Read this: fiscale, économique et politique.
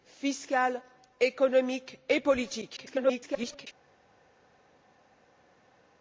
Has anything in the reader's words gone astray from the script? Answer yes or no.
yes